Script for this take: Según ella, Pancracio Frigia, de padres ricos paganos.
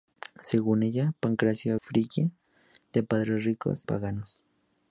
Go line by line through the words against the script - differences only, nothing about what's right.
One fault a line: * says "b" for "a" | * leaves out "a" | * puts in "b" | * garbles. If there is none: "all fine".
all fine